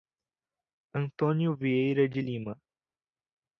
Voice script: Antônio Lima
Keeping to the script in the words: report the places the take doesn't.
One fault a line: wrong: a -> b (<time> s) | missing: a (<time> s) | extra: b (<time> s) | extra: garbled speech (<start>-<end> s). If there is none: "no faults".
extra: Vieira de (1.6 s)